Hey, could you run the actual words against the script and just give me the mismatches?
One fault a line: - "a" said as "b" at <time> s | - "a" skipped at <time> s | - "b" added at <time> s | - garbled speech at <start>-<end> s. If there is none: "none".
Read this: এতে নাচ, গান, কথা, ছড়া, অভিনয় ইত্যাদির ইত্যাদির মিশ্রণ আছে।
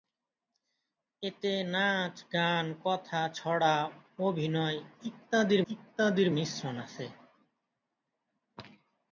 none